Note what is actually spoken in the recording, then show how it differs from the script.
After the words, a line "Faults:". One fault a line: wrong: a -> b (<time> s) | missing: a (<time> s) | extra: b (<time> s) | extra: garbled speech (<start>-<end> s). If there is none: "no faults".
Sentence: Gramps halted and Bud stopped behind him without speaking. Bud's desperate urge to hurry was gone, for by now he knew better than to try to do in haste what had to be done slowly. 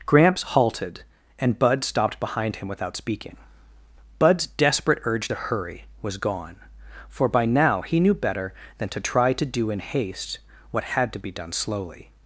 Gramps halted and Bud stopped behind him without speaking. Bud's desperate urge to hurry was gone, for by now he knew better than to try to do in haste what had to be done slowly.
Faults:
no faults